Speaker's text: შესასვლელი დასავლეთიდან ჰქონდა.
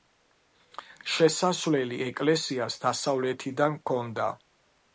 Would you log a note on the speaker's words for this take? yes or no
yes